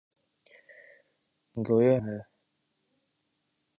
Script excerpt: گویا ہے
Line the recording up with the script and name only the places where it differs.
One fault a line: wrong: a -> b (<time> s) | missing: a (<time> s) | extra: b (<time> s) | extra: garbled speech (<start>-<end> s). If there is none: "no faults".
no faults